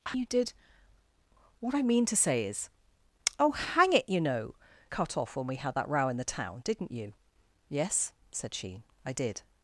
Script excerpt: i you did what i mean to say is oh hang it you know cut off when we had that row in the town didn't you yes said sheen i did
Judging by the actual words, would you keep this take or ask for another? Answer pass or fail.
pass